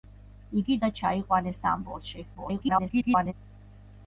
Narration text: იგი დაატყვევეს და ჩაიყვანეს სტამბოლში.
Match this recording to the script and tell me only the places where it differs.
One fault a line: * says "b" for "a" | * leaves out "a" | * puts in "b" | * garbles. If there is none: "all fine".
* leaves out "დაატყვევეს"
* garbles